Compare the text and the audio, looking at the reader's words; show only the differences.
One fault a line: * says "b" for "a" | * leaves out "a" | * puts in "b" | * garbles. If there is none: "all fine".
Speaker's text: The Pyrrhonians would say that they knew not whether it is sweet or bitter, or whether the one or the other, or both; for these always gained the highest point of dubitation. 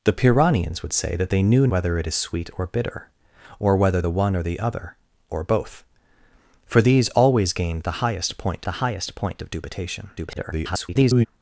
* leaves out "not"
* puts in "the highest point"
* garbles